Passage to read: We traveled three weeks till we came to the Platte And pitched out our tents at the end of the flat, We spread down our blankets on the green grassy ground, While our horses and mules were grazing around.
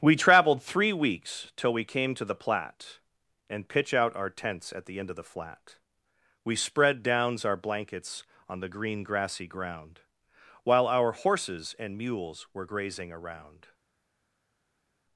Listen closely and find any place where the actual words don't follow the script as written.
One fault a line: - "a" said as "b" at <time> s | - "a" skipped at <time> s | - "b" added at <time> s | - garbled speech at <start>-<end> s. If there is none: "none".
- "pitched" said as "pitch" at 3.7 s
- "down" said as "downs" at 7.0 s